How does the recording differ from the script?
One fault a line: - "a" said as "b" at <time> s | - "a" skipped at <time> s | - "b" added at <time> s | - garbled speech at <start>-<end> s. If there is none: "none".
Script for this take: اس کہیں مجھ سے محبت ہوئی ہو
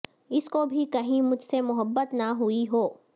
- "کو بھی" added at 0.5 s
- "نہ" added at 2.1 s